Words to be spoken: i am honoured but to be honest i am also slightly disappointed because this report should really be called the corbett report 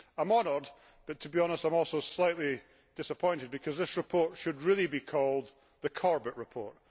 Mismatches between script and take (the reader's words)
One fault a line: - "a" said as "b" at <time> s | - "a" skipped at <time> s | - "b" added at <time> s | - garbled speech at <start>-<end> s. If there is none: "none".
none